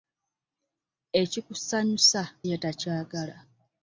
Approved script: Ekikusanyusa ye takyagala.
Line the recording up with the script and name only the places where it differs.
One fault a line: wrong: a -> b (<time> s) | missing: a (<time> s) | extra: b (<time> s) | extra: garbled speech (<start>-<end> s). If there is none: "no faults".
no faults